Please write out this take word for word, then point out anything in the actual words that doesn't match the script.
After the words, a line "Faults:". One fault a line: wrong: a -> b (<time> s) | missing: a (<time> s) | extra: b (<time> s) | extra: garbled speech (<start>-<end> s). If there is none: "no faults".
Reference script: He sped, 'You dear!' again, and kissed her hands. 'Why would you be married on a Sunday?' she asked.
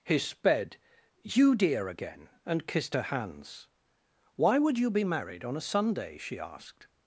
He sped, 'You dear!' again, and kissed her hands. 'Why would you be married on a Sunday?' she asked.
Faults:
no faults